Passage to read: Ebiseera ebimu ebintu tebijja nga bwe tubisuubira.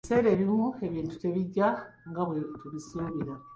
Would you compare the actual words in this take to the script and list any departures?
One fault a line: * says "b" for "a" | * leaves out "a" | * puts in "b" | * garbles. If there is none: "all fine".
all fine